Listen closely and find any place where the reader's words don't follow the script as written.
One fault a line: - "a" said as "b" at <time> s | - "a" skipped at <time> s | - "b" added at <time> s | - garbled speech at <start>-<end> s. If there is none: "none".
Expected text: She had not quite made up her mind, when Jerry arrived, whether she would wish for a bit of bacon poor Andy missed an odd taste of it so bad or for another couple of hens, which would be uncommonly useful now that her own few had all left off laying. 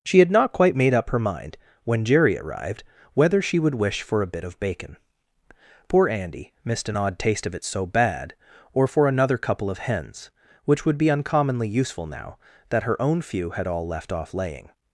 none